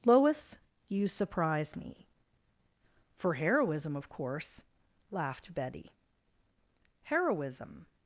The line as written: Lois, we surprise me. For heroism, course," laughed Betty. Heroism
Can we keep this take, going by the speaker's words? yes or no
no